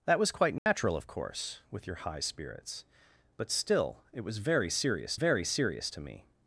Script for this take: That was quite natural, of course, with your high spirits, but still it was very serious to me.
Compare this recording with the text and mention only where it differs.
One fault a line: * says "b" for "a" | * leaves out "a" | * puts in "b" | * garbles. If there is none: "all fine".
* puts in "very serious"